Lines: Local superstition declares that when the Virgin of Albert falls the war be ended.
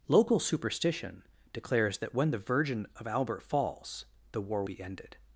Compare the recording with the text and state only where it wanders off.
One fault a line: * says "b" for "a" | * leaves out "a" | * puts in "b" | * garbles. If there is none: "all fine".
all fine